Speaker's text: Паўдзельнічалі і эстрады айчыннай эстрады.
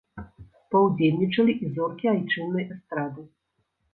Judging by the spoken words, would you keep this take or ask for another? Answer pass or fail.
fail